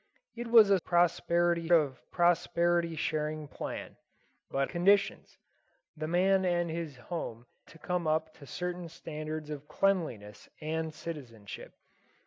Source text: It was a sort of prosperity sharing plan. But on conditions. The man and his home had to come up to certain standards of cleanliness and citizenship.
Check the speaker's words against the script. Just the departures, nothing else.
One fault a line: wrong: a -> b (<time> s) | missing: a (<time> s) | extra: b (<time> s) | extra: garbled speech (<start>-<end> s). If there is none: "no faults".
wrong: sort -> prosperity (0.8 s)
missing: on (4.7 s)
missing: had (7.4 s)